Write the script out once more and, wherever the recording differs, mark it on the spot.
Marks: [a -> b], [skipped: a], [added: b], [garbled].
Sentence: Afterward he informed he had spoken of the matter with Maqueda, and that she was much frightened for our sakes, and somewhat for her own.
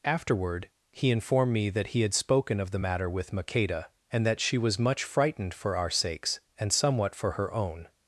Afterward he informed [added: me that] he had spoken of the matter with Maqueda, and that she was much frightened for our sakes, and somewhat for her own.